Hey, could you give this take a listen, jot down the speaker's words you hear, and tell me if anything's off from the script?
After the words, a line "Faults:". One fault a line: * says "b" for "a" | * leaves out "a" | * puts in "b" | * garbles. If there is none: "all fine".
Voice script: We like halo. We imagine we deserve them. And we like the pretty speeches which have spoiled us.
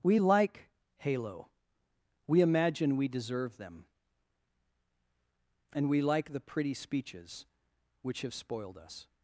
We like halo. We imagine we deserve them. And we like the pretty speeches which have spoiled us.
Faults:
all fine